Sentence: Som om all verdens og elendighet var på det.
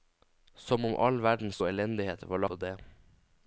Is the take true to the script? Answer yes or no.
yes